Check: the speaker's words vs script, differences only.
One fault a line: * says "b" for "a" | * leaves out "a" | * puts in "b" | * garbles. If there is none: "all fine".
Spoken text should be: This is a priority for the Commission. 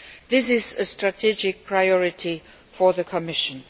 * puts in "strategic"